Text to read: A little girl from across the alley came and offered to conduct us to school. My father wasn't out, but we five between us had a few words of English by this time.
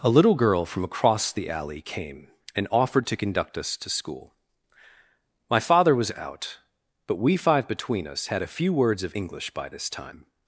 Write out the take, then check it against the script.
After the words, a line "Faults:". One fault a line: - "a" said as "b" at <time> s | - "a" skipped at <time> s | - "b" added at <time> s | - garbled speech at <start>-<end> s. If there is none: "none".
A little girl from across the alley came and offered to conduct us to school. My father was out, but we five between us had a few words of English by this time.
Faults:
- "wasn't" said as "was" at 5.9 s